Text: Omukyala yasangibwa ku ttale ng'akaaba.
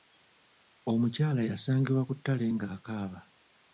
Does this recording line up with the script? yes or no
yes